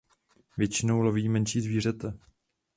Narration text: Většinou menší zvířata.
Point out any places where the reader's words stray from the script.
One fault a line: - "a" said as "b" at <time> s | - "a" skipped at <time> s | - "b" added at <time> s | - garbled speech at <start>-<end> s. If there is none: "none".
- "loví" added at 1.0 s